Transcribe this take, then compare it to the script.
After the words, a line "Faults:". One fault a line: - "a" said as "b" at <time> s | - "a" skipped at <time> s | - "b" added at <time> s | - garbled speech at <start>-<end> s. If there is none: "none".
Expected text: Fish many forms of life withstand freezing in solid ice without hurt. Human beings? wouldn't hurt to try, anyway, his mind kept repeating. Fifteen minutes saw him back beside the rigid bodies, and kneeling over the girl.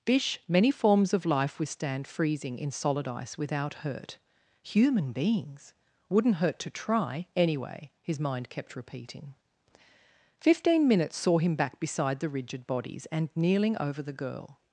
Fish many forms of life withstand freezing in solid ice without hurt. Human beings? wouldn't hurt to try, anyway, his mind kept repeating. Fifteen minutes saw him back beside the rigid bodies, and kneeling over the girl.
Faults:
none